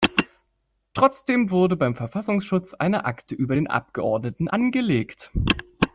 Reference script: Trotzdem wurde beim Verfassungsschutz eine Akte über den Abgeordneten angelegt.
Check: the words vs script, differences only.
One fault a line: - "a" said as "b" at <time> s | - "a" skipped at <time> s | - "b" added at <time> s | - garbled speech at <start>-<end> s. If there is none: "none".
none